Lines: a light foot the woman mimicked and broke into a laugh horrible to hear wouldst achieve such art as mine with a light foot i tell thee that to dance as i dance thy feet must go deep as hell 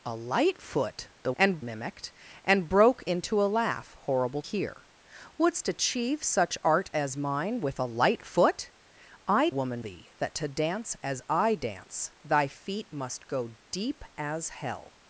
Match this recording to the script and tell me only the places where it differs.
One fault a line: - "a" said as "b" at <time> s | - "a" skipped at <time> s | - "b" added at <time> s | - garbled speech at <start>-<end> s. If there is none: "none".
- "woman" said as "and" at 1.4 s
- "to" skipped at 4.4 s
- "tell" said as "woman" at 9.5 s